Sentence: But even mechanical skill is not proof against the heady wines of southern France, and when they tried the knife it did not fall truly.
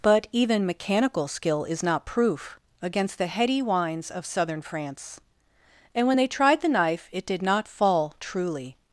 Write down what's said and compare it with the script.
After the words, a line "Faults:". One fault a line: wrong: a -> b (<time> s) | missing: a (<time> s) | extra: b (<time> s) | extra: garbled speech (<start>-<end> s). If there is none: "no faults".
But even mechanical skill is not proof against the heady wines of southern France, and when they tried the knife it did not fall truly.
Faults:
no faults